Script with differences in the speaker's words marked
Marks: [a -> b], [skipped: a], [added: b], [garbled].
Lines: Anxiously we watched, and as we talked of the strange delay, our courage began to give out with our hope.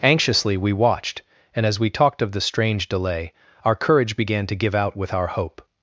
Anxiously we watched, and as we talked of the strange delay, our courage began to give out with our hope.